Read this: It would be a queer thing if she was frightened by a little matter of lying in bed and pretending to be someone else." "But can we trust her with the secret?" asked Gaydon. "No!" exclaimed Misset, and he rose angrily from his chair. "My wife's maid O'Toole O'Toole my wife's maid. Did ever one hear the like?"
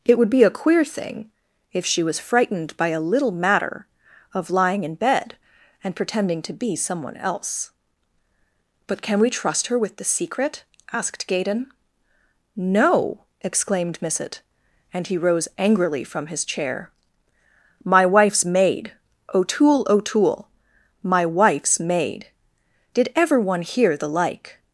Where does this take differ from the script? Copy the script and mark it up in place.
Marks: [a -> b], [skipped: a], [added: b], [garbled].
It would be a queer thing if she was frightened by a little matter of lying in bed and pretending to be someone else." "But can we trust her with the secret?" asked Gaydon. "No!" exclaimed Misset, and he rose angrily from his chair. "My wife's maid O'Toole O'Toole my wife's maid. Did ever one hear the like?"